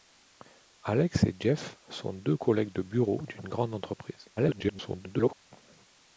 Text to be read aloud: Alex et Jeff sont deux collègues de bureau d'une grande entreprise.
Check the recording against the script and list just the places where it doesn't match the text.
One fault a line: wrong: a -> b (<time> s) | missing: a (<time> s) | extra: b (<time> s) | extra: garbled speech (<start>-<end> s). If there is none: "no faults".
extra: garbled speech (4.4-5.3 s)